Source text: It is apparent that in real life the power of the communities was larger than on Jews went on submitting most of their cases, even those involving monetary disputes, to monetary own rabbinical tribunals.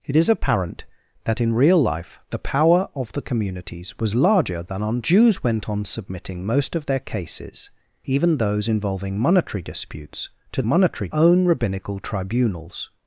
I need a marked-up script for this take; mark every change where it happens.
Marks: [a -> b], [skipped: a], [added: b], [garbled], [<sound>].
It is apparent that in real life the power of the communities was larger than on Jews went on submitting most of their cases, even those involving monetary disputes, to monetary own rabbinical tribunals.